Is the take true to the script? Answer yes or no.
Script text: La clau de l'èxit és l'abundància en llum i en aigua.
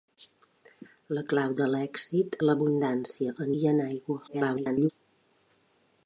no